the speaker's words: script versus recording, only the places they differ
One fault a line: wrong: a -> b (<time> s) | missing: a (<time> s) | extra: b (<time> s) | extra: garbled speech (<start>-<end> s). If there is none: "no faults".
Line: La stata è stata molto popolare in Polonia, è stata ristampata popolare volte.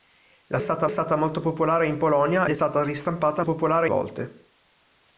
no faults